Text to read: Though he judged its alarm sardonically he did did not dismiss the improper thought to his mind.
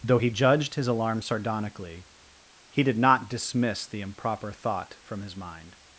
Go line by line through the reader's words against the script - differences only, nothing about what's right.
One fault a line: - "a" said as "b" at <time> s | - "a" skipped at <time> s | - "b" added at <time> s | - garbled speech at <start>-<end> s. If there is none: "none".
- "its" said as "his" at 0.7 s
- "did" skipped at 3.0 s
- "to" said as "from" at 5.0 s